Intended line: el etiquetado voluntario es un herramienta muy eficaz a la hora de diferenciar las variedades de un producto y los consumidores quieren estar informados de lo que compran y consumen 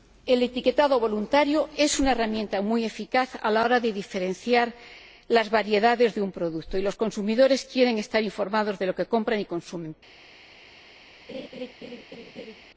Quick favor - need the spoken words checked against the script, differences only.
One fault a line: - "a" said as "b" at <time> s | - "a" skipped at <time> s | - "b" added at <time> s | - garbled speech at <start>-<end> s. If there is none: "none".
- "un" said as "una" at 2.0 s